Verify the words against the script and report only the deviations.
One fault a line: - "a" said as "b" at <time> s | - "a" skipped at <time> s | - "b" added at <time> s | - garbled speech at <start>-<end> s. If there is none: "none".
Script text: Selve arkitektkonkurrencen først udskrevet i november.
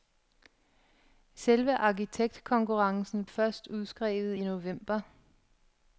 none